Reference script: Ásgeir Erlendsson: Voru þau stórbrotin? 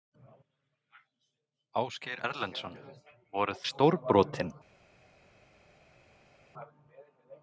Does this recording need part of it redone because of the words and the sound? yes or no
yes